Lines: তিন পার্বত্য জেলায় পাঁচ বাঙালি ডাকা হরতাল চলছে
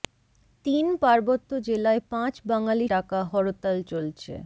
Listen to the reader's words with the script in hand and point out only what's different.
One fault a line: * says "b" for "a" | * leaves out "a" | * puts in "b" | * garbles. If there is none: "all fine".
all fine